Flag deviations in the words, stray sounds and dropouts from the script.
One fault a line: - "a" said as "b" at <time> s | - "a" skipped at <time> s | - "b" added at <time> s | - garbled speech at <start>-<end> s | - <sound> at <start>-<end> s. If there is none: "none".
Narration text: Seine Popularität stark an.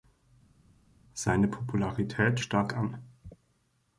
none